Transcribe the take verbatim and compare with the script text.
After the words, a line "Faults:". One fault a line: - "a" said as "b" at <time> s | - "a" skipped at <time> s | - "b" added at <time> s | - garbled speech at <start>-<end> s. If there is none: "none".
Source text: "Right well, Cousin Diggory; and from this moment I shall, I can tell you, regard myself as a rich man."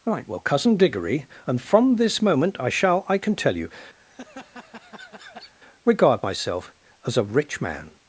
"Right well, Cousin Diggory; and from this moment I shall, I can tell you, regard myself as a rich man."
Faults:
none